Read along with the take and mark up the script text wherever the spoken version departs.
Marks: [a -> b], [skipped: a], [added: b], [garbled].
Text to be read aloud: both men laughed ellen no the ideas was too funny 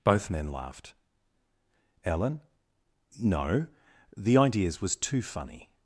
both men laughed ellen no the ideas was too funny